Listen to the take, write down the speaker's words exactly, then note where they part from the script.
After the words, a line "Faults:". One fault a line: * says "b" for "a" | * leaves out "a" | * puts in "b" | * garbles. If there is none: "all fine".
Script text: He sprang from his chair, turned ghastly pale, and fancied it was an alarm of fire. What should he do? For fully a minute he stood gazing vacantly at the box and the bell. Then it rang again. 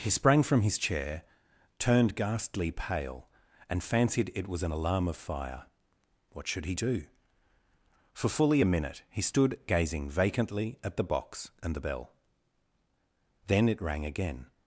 He sprang from his chair, turned ghastly pale, and fancied it was an alarm of fire. What should he do? For fully a minute he stood gazing vacantly at the box and the bell. Then it rang again.
Faults:
all fine